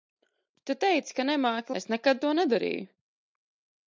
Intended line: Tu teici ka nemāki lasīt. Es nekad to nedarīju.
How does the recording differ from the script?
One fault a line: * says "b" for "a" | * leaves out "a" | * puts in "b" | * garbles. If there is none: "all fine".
* leaves out "lasīt"